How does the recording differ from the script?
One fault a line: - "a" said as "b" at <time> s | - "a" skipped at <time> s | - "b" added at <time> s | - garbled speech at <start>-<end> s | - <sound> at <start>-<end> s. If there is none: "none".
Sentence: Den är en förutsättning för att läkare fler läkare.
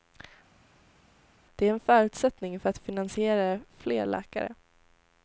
- "Den" said as "Det" at 1.6 s
- "läkare" said as "finansiera" at 2.8 s